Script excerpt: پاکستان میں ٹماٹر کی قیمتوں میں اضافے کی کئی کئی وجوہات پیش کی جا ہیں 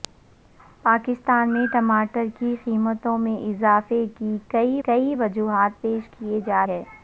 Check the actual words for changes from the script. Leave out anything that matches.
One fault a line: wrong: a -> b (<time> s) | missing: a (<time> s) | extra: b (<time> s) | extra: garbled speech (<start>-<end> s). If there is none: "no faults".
no faults